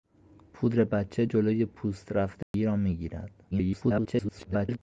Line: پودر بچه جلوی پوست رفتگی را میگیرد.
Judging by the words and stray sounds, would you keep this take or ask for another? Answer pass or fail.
fail